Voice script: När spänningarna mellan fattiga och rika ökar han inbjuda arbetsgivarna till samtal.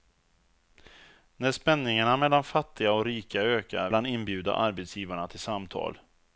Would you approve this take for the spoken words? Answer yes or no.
yes